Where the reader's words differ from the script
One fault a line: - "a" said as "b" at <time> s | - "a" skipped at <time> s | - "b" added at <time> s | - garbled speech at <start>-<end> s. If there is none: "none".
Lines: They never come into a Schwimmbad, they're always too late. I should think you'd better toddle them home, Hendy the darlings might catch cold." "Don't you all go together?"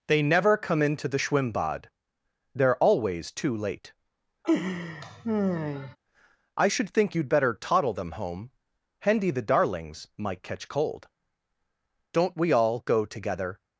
- "a" said as "the" at 1.1 s
- "you" said as "we" at 12.4 s